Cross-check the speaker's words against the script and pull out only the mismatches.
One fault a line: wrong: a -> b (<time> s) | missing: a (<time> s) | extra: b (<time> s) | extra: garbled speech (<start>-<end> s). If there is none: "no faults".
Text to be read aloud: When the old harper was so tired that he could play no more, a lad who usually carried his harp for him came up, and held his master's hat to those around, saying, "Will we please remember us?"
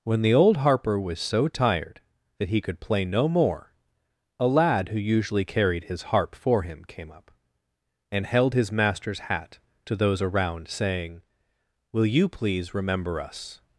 wrong: we -> you (12.1 s)